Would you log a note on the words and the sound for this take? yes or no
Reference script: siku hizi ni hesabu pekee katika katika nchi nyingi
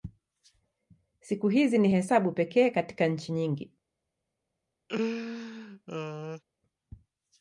yes